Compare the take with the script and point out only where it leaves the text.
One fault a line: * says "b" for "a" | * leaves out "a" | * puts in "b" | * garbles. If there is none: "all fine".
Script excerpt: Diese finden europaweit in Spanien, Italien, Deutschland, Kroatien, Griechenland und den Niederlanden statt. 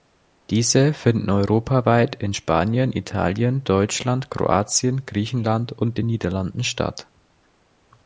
all fine